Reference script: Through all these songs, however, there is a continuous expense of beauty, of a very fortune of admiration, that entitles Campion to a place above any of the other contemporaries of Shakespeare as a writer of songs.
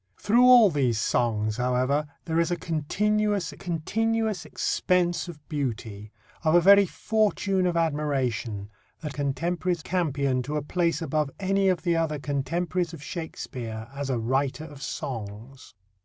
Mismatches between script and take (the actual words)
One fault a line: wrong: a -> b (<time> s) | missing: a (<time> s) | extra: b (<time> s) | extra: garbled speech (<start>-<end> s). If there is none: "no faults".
extra: continuous (3.5 s)
wrong: entitles -> contemporaries (9.1 s)